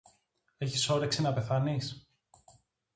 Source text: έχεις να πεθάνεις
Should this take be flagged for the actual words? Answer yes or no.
yes